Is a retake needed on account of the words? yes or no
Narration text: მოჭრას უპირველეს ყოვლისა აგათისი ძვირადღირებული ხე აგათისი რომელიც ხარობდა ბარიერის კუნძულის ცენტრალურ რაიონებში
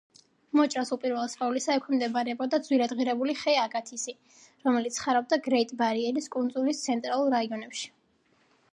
yes